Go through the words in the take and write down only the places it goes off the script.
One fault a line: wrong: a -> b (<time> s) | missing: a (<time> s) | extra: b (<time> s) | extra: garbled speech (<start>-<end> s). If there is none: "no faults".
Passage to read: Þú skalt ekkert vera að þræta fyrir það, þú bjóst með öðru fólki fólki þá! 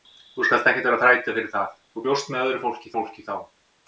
no faults